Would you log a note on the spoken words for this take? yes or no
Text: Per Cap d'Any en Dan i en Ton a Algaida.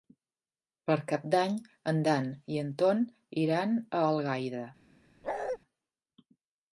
yes